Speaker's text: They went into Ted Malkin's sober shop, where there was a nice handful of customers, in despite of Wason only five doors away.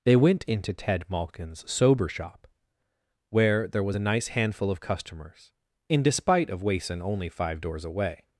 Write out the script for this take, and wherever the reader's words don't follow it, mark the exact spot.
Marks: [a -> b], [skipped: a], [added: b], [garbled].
They went into Ted Malkin's sober shop, where there was a nice handful of customers, in despite of Wason only five doors away.